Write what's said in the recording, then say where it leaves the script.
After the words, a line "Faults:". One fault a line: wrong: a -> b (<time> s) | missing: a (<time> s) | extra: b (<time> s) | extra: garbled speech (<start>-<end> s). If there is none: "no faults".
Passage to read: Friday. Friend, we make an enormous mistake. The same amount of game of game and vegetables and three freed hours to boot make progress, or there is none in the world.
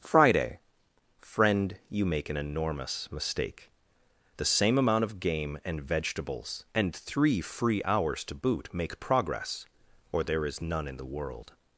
Friday. Friend, you make an enormous mistake. The same amount of game and vegetables and three free hours to boot make progress, or there is none in the world.
Faults:
wrong: we -> you (1.9 s)
missing: of game (5.6 s)
wrong: freed -> free (7.4 s)